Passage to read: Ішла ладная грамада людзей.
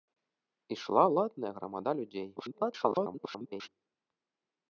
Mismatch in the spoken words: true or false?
true